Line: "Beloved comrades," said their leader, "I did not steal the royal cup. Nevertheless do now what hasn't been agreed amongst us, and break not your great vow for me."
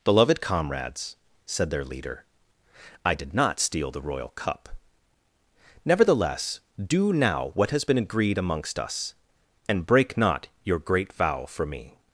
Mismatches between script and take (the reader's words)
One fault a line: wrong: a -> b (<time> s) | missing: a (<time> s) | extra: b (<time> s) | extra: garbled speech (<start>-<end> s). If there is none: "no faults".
wrong: hasn't -> has (7.7 s)